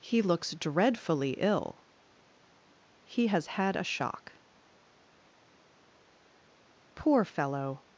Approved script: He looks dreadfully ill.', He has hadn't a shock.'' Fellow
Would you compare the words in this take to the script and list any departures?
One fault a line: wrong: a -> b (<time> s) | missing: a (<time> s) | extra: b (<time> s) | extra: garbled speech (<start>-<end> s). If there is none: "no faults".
wrong: hadn't -> had (3.5 s)
extra: Poor (6.9 s)